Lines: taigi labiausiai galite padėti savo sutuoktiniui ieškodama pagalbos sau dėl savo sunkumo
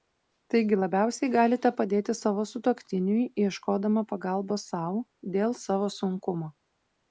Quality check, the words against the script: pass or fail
pass